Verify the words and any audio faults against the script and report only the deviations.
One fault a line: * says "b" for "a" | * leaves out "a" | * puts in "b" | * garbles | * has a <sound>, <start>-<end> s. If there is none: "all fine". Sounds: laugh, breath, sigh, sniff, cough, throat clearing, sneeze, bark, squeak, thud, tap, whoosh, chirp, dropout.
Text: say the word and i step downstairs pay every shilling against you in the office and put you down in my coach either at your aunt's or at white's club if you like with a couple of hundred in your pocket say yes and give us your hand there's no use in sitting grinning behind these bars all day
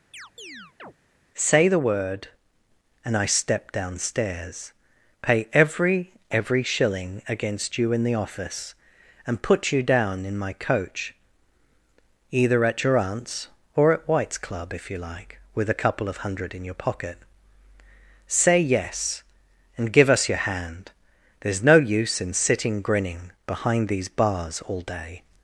* has a chirp, 0.1-0.9 s
* puts in "every"